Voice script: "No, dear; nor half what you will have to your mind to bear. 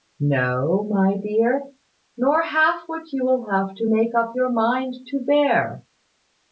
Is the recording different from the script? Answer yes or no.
yes